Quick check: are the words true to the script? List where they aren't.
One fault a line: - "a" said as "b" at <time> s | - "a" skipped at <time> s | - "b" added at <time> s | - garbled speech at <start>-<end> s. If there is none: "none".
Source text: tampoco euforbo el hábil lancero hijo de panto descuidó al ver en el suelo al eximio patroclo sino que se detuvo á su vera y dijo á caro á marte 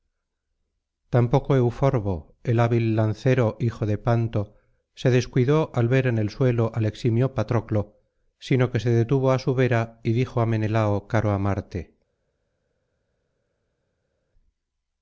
- "se" added at 4.9 s
- "menelao" added at 10.5 s